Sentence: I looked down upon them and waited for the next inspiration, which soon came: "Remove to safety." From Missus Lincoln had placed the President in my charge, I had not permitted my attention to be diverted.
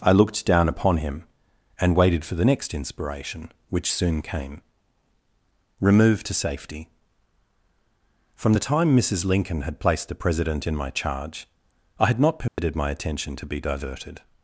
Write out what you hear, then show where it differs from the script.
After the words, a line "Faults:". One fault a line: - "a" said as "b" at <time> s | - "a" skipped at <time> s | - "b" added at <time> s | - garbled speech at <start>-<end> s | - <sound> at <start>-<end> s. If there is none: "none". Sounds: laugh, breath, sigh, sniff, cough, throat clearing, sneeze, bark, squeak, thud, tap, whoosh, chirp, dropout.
I looked down upon him and waited for the next inspiration, which soon came: "Remove to safety." From the time Missus Lincoln had placed the President in my charge, I had not permitted my attention to be diverted.
Faults:
- "them" said as "him" at 1.0 s
- "the time" added at 8.5 s
- dropout at 12.5-12.6 s